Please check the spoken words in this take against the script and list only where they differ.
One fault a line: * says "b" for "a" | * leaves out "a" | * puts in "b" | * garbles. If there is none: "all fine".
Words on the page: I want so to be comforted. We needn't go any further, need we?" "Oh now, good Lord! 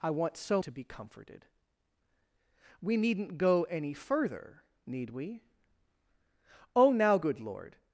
all fine